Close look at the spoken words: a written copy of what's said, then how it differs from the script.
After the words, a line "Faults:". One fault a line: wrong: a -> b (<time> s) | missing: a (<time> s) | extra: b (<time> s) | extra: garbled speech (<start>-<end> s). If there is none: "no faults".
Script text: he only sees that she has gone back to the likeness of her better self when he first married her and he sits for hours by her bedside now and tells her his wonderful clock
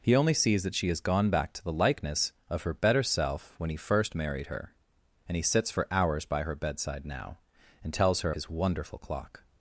he only sees that she has gone back to the likeness of her better self when he first married her and he sits for hours by her bedside now and tells her his wonderful clock
Faults:
no faults